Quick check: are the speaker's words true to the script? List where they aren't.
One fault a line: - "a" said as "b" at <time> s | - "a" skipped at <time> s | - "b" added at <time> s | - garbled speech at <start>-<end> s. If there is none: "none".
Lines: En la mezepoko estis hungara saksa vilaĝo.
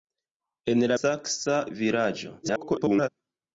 - "mezepoko estis hungara" skipped at 1.0 s
- garbled speech at 2.4-3.1 s